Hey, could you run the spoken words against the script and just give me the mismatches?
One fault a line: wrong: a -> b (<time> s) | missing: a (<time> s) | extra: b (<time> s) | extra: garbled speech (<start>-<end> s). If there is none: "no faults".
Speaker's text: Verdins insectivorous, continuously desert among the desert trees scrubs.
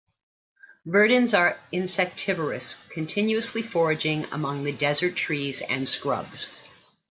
extra: are (1.4 s)
wrong: desert -> foraging (3.6 s)
extra: and (5.6 s)